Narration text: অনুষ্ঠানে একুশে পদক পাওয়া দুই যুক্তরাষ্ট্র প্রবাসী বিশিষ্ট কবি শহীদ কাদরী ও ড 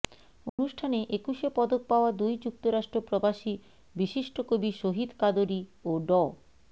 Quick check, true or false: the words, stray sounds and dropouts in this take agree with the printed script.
false